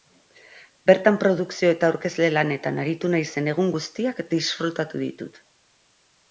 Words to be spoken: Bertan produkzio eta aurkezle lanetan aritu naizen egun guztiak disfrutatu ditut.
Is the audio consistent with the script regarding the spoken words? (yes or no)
yes